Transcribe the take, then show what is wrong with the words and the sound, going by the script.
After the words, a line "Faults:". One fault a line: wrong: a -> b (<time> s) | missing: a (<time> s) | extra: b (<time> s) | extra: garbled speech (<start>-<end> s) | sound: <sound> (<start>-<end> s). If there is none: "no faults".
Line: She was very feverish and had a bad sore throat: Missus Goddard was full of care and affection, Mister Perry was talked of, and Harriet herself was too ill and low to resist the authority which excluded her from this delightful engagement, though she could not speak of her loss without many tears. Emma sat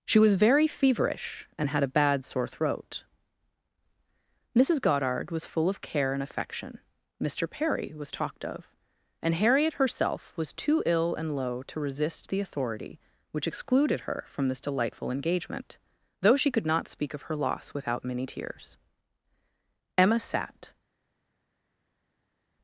She was very feverish and had a bad sore throat: Missus Goddard was full of care and affection, Mister Perry was talked of, and Harriet herself was too ill and low to resist the authority which excluded her from this delightful engagement, though she could not speak of her loss without many tears. Emma sat
Faults:
no faults